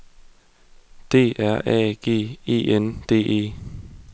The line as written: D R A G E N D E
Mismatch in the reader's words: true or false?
false